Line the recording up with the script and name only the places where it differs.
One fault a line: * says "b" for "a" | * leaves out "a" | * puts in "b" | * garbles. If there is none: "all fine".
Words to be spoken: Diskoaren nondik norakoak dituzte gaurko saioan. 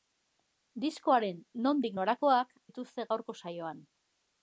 all fine